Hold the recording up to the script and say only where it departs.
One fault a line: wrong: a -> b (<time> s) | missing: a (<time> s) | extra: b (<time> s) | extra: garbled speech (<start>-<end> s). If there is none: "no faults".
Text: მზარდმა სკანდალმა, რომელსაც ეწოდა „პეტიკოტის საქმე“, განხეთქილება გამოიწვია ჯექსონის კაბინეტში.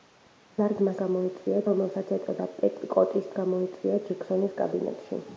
wrong: სკანდალმა -> გამოიწვია (1.0 s)
missing: საქმე განხეთქილება (3.3 s)